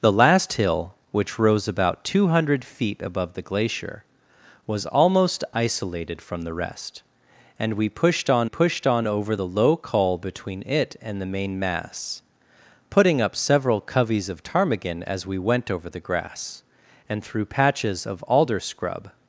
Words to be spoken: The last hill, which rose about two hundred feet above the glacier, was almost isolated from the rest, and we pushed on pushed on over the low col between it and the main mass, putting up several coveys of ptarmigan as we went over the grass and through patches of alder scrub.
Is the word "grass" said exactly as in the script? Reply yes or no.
yes